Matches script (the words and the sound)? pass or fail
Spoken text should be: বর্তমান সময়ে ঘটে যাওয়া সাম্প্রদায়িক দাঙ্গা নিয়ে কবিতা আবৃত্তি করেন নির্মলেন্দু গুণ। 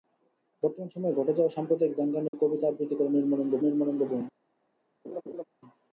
fail